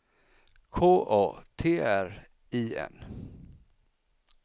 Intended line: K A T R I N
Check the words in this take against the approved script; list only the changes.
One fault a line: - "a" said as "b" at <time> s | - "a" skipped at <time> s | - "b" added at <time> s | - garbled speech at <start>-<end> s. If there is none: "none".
none